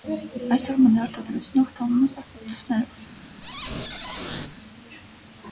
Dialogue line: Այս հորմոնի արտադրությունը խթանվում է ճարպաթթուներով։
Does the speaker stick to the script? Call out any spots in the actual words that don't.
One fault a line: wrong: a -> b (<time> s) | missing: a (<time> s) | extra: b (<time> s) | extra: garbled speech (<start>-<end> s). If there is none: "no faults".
no faults